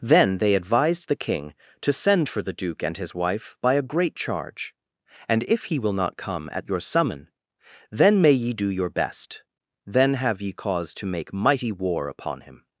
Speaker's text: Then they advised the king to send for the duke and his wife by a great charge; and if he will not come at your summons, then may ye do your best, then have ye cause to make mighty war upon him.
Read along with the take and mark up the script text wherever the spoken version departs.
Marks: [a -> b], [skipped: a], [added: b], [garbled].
Then they advised the king to send for the duke and his wife by a great charge; and if he will not come at your [summons, -> summon] then may ye do your best, then have ye cause to make mighty war upon him.